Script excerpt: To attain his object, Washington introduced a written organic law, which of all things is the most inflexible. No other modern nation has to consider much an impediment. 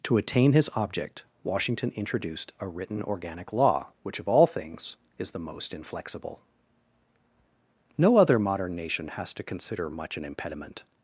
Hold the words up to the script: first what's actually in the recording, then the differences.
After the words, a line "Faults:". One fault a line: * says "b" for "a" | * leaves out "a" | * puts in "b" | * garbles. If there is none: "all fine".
To attain his object, Washington introduced a written organic law, which of all things is the most inflexible. No other modern nation has to consider much an impediment.
Faults:
all fine